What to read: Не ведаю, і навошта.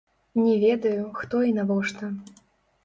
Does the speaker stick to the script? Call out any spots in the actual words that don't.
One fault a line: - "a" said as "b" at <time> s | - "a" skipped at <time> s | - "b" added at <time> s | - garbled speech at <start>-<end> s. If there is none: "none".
- "хто" added at 1.2 s